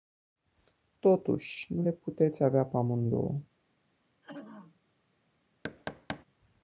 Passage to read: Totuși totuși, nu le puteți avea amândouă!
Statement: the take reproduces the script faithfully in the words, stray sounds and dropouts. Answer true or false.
false